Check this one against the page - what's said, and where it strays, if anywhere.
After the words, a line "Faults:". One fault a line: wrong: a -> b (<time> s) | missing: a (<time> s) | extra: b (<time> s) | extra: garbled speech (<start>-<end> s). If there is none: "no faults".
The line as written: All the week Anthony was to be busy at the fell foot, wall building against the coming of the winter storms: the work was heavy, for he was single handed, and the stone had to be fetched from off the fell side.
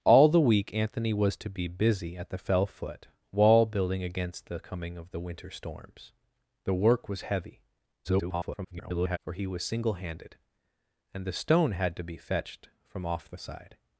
All the week Anthony was to be busy at the fell foot, wall building against the coming of the winter storms: the work was heavy, [garbled] for he was single handed, and the stone had to be fetched from off the side.
Faults:
extra: garbled speech (8.0-9.2 s)
missing: fell (13.4 s)